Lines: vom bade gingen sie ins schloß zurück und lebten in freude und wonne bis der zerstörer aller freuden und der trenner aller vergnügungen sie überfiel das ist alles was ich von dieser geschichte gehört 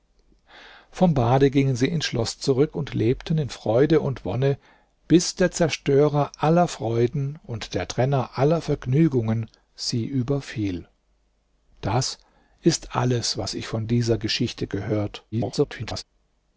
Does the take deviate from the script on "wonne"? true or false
false